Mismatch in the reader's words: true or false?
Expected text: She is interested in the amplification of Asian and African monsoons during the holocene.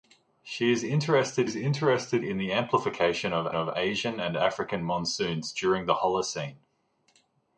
true